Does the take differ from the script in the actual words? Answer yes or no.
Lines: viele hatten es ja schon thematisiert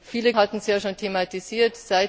no